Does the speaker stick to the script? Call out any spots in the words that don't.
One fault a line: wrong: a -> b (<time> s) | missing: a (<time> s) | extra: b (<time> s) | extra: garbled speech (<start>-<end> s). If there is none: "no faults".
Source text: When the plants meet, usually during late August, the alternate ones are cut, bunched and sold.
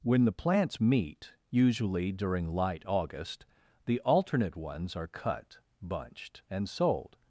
wrong: late -> light (2.5 s)